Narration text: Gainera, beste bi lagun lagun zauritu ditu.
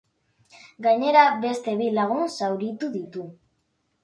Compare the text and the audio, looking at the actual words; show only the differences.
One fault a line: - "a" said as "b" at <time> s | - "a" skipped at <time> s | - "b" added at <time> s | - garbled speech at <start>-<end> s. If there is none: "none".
- "lagun" skipped at 2.2 s